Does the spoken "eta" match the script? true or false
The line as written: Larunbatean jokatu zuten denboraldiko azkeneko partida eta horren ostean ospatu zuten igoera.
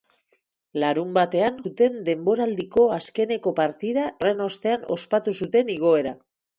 false